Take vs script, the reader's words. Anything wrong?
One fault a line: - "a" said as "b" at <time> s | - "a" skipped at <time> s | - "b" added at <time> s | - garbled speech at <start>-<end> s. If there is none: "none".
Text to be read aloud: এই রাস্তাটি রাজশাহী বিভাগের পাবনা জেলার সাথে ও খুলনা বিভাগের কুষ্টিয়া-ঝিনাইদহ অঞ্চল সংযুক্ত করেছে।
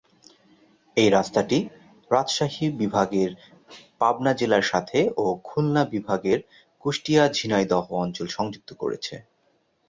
none